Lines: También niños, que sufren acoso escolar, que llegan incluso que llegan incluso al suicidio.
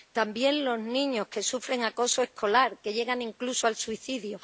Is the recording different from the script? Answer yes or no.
yes